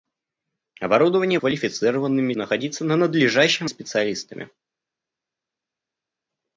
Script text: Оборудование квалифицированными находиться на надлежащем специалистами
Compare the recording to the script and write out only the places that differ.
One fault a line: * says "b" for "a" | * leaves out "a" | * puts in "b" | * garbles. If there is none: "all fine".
all fine